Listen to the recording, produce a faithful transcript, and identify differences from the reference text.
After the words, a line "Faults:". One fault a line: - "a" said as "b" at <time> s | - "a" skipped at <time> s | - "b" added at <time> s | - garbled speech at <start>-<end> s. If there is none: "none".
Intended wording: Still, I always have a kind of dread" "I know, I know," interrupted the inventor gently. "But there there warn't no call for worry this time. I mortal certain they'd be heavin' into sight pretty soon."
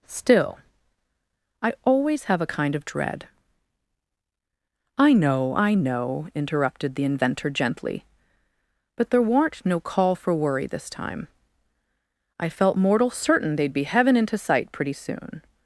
Still, I always have a kind of dread" "I know, I know," interrupted the inventor gently. "But there warn't no call for worry this time. I felt mortal certain they'd be heavin' into sight pretty soon."
Faults:
- "there" skipped at 9.2 s
- "felt" added at 12.5 s